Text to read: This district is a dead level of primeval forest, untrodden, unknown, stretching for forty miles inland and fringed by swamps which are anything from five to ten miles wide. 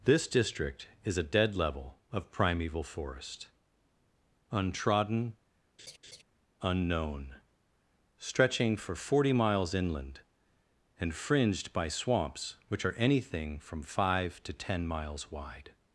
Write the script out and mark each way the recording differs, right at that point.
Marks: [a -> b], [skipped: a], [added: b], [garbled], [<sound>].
This district is a dead level of primeval forest, untrodden, [laugh] unknown, stretching for forty miles inland and fringed by swamps which are anything from five to ten miles wide.